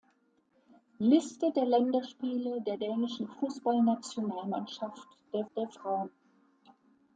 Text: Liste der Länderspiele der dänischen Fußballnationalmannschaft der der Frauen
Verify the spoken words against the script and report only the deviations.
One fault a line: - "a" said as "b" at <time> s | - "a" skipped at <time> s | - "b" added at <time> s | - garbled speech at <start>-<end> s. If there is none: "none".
none